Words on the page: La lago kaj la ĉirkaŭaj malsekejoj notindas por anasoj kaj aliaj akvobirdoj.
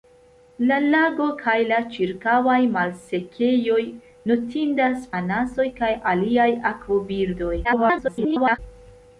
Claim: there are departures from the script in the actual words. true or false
true